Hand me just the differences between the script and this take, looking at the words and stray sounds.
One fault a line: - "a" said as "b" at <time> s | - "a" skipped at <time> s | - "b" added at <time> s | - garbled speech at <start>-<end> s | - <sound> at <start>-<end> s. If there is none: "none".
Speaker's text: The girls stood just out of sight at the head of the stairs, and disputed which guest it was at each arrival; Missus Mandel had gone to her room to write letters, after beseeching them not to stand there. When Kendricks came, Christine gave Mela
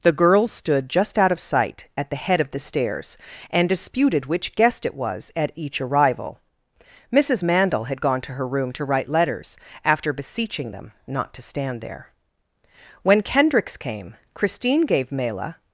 none